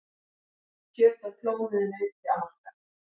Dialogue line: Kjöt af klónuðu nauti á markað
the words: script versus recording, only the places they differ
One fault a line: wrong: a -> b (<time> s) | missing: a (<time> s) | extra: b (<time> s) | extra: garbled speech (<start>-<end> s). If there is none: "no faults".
no faults